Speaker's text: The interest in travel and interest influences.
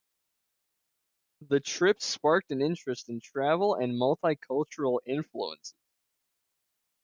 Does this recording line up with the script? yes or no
no